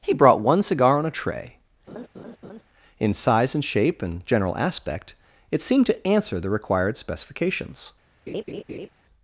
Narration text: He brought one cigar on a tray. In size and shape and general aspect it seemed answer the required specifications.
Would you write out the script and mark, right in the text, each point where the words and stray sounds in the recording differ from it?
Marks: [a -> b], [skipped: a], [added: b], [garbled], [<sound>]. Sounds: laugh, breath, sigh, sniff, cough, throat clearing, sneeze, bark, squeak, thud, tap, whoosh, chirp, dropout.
He brought one cigar on a tray. [laugh] In size and shape and general aspect it seemed [added: to] answer the required specifications. [laugh]